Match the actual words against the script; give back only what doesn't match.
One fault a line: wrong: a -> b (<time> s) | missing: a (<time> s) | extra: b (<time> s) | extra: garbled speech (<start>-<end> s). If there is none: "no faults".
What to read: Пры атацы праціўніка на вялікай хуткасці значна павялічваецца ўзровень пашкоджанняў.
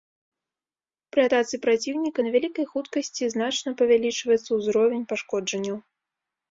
no faults